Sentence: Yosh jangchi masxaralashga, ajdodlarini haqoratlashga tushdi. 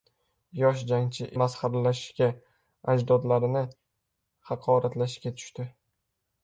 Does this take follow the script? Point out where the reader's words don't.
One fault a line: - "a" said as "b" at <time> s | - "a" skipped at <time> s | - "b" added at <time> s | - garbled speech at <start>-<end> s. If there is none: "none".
none